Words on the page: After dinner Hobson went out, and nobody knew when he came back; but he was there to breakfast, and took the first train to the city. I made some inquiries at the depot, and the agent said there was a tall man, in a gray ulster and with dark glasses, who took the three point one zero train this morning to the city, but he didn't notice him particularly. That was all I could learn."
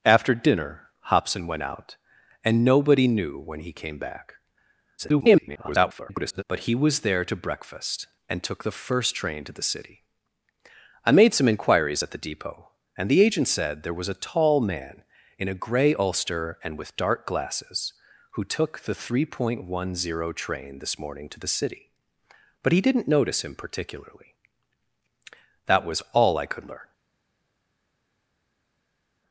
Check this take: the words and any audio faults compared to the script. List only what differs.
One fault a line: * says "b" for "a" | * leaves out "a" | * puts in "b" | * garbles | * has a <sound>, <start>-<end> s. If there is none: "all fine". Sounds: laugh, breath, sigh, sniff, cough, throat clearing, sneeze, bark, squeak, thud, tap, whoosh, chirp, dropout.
* garbles